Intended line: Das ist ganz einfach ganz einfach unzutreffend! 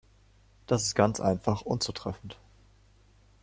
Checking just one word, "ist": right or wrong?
right